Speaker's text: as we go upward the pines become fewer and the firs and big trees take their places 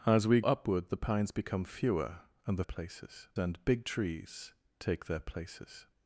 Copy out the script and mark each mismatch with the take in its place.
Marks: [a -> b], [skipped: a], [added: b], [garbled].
as we [skipped: go] upward the pines become fewer and the [firs -> places] and big trees take their places